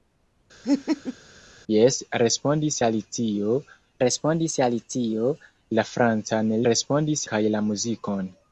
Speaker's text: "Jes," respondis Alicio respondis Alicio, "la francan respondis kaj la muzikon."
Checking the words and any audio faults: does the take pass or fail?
fail